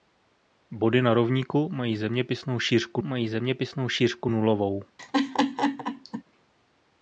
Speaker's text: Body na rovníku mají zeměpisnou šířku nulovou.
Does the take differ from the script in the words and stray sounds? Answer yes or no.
yes